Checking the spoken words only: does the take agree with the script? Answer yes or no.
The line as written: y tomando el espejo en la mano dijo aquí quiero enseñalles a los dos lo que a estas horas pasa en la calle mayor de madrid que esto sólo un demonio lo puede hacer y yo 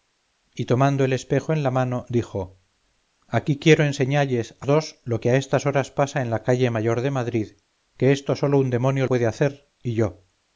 no